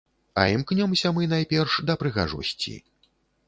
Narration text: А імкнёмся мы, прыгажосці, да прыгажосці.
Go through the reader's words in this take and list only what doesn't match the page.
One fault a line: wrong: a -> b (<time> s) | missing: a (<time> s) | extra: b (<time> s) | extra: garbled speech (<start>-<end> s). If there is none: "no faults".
wrong: прыгажосці -> найперш (1.3 s)